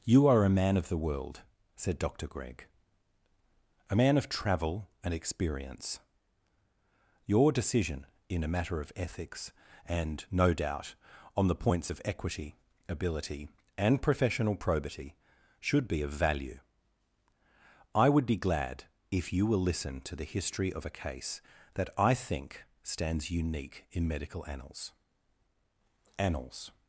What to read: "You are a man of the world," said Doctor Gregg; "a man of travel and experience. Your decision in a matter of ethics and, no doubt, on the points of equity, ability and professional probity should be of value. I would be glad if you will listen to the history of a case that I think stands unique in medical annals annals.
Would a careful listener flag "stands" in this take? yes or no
no